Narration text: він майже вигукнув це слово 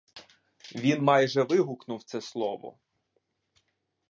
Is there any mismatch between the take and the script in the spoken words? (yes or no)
no